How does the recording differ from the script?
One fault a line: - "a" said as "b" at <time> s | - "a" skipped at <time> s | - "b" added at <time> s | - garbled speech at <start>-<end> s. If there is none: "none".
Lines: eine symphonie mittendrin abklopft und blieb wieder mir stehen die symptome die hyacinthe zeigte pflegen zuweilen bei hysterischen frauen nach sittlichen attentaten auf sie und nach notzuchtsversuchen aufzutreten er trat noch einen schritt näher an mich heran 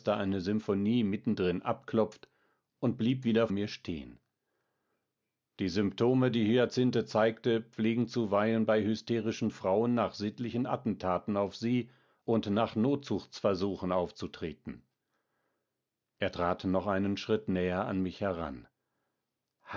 none